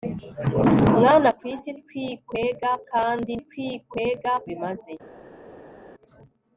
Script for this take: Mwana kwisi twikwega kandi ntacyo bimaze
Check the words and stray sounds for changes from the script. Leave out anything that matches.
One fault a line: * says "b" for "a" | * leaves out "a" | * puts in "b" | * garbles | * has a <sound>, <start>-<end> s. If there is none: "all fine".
* says "twikwega" for "ntacyo"